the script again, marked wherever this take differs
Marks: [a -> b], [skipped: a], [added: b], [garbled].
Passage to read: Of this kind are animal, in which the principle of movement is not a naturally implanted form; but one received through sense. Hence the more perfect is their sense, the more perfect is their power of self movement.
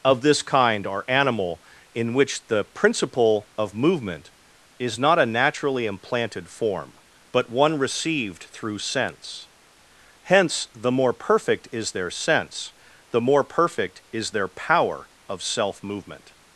Of this kind are animal, in which the principle of movement is not a naturally implanted form; but one received through sense. Hence the more perfect is their sense, the more perfect is their power of self movement.